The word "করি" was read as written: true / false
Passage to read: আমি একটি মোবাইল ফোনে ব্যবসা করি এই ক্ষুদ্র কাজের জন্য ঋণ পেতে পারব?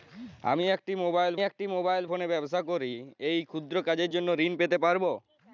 true